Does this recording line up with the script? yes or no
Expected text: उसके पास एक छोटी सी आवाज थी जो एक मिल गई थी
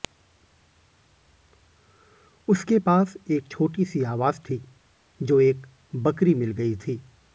no